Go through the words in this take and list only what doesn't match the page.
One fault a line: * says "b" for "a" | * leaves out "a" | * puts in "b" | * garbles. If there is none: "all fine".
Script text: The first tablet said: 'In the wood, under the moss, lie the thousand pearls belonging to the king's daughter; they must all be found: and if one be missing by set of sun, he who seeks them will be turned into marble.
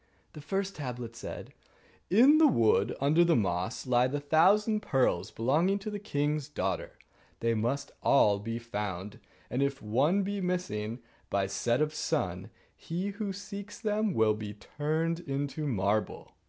all fine